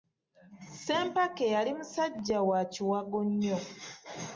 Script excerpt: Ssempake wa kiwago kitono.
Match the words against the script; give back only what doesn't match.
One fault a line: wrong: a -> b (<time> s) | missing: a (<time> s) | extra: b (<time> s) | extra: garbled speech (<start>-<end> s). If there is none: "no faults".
extra: yali musajja (1.6 s)
wrong: kitono -> nnyo (3.3 s)